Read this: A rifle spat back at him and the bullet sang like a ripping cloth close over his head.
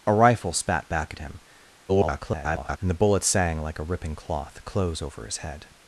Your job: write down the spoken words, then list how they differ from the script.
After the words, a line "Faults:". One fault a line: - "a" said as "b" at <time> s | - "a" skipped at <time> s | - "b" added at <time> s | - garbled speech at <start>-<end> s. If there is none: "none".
A rifle spat back at him [garbled] and the bullet sang like a ripping cloth close over his head.
Faults:
- garbled speech at 1.9-2.8 s